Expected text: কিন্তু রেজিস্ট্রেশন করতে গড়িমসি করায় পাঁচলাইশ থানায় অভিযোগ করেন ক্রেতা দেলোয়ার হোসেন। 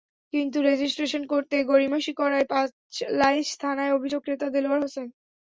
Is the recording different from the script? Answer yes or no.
yes